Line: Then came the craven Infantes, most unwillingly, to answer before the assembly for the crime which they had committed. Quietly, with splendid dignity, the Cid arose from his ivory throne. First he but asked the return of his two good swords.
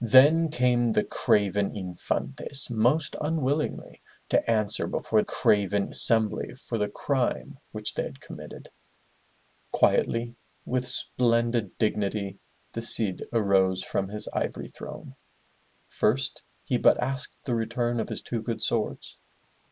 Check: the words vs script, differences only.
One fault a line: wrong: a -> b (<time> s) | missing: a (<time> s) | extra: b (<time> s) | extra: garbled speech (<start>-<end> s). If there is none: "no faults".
wrong: the -> craven (5.2 s)